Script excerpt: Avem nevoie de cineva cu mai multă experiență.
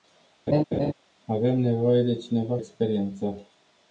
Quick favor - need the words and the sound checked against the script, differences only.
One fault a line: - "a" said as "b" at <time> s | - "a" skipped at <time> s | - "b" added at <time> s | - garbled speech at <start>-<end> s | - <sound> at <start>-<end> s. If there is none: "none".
- laugh at 0.5-0.9 s
- "cu mai multă" skipped at 2.6 s